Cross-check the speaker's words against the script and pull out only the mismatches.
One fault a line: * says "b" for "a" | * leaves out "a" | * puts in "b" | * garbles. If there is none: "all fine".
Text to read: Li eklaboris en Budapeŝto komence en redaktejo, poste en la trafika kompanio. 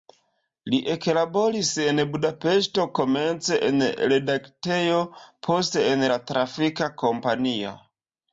all fine